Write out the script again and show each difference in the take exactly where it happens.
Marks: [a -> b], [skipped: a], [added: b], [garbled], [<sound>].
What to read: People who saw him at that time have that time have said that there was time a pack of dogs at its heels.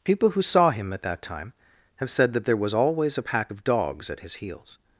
People who saw him at that time have [skipped: that time have] said that there was [time -> always] a pack of dogs at [its -> his] heels.